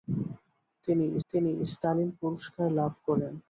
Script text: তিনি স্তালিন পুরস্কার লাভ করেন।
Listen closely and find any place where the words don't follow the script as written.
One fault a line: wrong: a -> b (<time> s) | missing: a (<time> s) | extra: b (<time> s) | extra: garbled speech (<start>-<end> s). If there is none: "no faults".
extra: তিনি (1.3 s)